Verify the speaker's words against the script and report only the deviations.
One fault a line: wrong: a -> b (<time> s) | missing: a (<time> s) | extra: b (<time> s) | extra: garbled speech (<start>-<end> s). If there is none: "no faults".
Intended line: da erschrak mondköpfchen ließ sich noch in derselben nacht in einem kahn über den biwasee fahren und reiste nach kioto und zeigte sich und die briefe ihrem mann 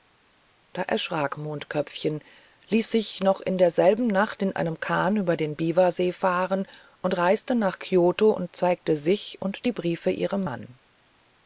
no faults